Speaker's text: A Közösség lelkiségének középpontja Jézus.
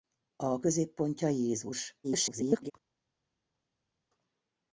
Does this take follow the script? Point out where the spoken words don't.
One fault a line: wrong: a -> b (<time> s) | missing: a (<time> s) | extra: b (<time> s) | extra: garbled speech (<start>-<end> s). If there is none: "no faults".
missing: Közösség lelkiségének (0.6 s)
extra: garbled speech (2.0-2.7 s)